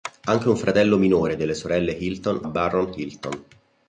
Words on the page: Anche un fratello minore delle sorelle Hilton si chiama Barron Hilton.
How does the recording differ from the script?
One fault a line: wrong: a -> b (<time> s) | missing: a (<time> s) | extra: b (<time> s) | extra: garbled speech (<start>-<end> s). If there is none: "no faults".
missing: si chiama (2.5 s)